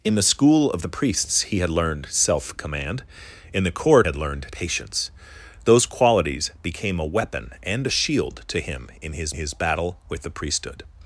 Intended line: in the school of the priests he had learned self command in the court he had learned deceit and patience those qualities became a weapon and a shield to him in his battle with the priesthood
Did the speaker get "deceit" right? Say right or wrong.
wrong